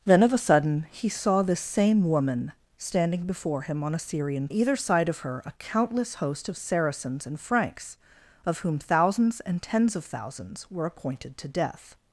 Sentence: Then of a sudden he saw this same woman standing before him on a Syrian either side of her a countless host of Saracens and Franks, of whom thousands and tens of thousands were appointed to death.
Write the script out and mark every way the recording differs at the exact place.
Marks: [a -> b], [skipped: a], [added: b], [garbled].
Then of a sudden he saw this same woman standing before him on a Syrian either side of her a countless host of Saracens and Franks, of whom thousands and tens of thousands were appointed to death.